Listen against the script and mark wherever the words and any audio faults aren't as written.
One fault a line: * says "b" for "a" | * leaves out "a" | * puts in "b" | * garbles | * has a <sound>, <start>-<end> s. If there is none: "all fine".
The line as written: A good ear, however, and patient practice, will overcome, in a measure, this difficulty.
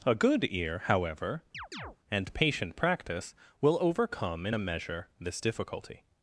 * has a chirp, 1.5-2.0 s